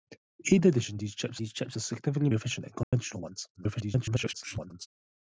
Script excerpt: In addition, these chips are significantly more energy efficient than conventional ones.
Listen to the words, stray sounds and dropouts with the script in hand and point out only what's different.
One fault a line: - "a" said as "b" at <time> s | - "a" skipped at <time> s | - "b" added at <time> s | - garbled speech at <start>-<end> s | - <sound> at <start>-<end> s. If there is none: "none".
- "these chips" added at 1.4 s
- "more energy" skipped at 2.3 s
- dropout at 2.8-2.9 s
- garbled speech at 3.5-4.9 s